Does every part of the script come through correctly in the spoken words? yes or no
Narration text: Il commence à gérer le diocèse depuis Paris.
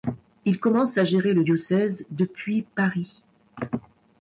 yes